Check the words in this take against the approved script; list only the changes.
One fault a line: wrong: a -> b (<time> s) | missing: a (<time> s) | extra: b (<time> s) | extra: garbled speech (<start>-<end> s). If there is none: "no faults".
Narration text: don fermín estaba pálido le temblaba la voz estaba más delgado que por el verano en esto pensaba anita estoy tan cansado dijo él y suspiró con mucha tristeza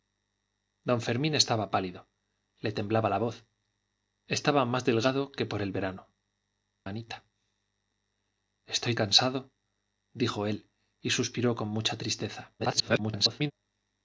missing: en esto pensaba (6.1 s)
missing: tan (9.0 s)
extra: garbled speech (12.6-13.5 s)